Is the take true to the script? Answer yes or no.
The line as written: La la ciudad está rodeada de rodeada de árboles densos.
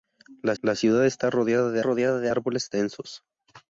yes